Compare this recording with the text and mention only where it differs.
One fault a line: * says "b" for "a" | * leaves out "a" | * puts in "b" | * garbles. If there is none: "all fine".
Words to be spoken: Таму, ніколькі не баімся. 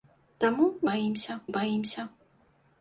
* says "баімся" for "ніколькі"